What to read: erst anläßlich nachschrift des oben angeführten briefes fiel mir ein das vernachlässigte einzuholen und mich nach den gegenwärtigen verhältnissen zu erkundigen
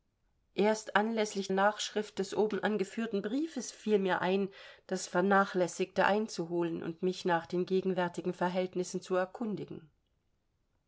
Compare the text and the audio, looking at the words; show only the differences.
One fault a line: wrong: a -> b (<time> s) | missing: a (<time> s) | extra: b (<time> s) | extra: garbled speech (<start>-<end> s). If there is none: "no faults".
no faults